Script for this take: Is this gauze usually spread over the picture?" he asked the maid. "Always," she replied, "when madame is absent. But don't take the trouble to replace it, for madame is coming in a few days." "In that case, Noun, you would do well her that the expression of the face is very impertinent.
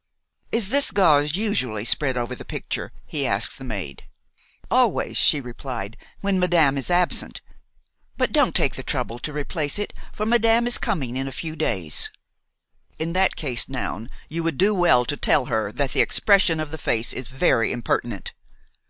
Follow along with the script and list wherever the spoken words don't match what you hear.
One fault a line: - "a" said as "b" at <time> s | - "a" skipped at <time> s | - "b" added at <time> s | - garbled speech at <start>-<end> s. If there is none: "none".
- "to tell" added at 15.0 s